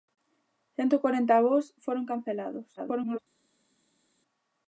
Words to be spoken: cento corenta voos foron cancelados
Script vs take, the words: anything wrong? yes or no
yes